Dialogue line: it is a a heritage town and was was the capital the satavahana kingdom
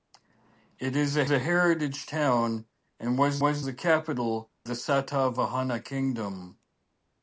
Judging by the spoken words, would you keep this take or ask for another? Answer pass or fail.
pass